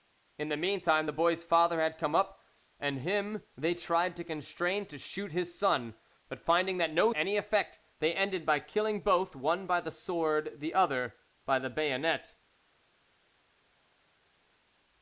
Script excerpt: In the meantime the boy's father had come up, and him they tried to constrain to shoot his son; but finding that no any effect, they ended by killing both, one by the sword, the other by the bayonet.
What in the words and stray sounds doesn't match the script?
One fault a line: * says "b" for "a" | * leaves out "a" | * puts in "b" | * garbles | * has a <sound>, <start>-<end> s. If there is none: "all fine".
all fine